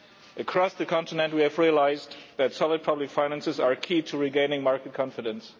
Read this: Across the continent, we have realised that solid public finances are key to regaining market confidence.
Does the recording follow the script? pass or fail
pass